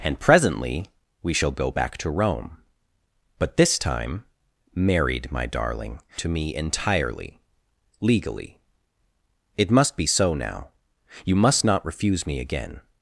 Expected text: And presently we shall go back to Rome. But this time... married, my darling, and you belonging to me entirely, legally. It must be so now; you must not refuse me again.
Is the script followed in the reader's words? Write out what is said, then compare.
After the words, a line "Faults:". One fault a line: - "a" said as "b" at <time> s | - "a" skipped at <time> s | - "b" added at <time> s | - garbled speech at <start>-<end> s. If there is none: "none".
And presently we shall go back to Rome. But this time... married, my darling, to me entirely, legally. It must be so now; you must not refuse me again.
Faults:
- "and you belonging" skipped at 6.0 s